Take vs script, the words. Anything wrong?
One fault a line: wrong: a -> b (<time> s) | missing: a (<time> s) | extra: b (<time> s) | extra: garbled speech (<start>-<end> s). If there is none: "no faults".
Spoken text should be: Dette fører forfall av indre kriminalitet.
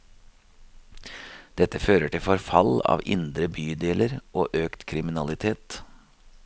extra: til (2.1 s)
extra: bydeler og økt (3.6 s)